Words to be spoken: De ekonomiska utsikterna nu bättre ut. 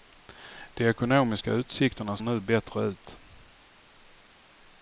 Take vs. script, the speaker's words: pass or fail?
pass